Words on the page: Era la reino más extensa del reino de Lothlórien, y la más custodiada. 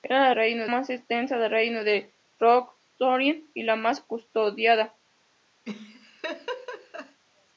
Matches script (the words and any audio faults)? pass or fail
fail